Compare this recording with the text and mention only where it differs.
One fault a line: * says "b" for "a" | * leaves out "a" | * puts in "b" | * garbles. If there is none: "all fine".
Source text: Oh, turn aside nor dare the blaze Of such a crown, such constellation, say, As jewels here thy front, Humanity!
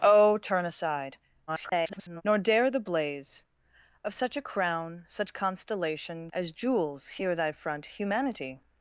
* garbles
* leaves out "say"